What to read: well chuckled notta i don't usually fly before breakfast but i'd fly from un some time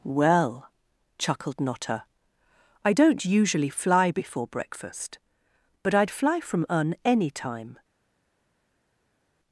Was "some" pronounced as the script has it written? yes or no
no